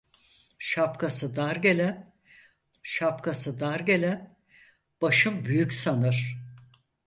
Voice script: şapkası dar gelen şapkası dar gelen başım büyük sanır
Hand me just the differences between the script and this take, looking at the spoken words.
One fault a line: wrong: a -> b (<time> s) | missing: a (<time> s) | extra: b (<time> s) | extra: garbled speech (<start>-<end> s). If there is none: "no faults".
no faults